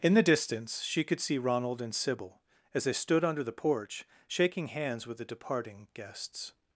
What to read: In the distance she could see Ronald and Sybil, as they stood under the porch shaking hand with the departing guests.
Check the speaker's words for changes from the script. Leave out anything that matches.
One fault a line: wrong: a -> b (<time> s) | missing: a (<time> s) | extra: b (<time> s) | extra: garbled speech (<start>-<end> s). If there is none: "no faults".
wrong: hand -> hands (4.7 s)